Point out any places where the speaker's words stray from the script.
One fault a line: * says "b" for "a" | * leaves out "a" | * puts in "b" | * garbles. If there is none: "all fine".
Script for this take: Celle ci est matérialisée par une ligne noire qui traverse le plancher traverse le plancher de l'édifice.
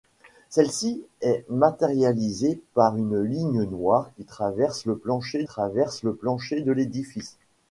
all fine